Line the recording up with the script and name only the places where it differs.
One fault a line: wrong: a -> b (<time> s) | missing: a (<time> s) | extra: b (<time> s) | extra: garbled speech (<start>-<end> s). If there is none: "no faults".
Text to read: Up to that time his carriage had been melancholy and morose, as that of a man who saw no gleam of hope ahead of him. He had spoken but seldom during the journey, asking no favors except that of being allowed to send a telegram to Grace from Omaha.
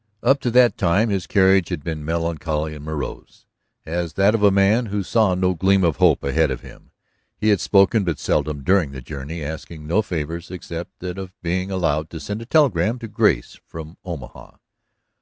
no faults